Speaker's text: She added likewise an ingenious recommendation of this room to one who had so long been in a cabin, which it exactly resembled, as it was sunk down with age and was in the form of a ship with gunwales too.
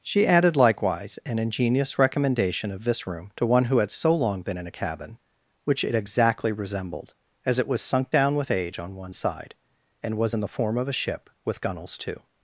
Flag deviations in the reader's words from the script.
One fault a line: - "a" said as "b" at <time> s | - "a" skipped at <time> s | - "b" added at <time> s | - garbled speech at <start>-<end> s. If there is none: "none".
- "on one side" added at 8.8 s